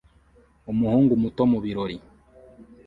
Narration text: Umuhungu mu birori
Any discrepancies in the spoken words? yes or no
yes